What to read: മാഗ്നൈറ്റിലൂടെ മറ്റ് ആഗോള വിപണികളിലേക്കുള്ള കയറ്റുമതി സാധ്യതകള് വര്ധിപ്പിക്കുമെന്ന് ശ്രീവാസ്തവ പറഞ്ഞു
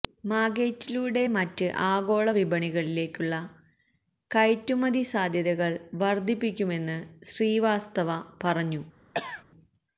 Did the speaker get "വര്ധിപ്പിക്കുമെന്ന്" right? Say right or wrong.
right